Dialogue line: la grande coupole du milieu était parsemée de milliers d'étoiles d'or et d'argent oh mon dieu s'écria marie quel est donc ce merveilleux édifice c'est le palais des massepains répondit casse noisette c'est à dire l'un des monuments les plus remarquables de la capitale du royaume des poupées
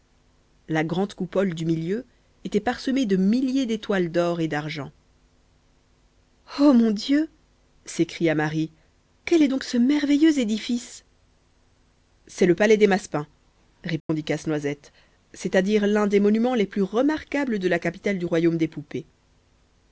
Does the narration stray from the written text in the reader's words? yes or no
no